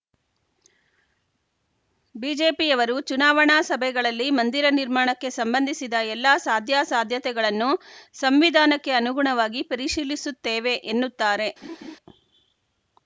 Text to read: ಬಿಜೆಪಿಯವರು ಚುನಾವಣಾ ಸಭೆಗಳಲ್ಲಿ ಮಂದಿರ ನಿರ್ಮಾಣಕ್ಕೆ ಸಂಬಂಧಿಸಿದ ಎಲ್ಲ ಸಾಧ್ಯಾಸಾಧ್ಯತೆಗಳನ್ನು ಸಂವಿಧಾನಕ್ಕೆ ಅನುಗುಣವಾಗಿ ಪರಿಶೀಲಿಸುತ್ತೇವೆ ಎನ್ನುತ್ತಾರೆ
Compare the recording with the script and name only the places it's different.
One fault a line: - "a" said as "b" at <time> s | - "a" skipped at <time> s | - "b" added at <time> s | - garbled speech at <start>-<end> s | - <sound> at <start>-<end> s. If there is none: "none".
- laugh at 11.6-12.0 s